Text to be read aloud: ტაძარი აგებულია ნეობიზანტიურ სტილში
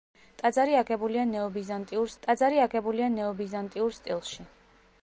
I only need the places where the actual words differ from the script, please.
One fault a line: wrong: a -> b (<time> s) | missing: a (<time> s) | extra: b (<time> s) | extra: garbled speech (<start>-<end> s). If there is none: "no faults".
extra: ტაძარი აგებულია ნეობიზანტიურ (2.3 s)